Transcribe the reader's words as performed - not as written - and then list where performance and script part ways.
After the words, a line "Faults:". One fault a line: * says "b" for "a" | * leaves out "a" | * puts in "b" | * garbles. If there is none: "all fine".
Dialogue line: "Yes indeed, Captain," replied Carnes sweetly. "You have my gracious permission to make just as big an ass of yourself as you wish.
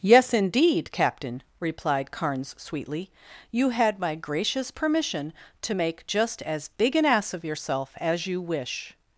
"Yes indeed, Captain," replied Carnes sweetly. "You had my gracious permission to make just as big an ass of yourself as you wish.
Faults:
* says "had" for "have"